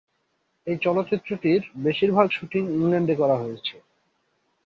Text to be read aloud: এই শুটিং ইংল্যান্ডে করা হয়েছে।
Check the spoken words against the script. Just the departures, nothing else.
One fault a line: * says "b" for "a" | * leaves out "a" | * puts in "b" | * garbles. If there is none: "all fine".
* puts in "চলচ্চিত্রটির বেশিরভাগ"